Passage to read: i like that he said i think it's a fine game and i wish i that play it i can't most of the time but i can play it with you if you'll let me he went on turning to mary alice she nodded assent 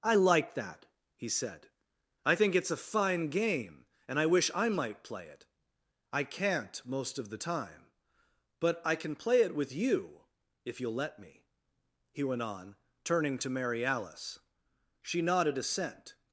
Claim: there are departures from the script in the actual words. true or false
true